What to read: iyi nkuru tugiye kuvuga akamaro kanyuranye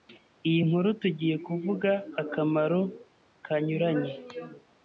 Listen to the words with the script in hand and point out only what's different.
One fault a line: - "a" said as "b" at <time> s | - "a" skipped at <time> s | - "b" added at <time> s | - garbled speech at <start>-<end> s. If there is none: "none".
none